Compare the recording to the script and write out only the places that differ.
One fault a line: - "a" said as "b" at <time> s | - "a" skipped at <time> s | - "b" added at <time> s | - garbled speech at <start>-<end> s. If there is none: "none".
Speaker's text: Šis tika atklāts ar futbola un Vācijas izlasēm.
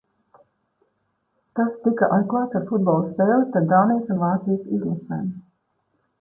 - "Šis" said as "Tas" at 1.6 s
- "spēli starp Dānijas" added at 3.1 s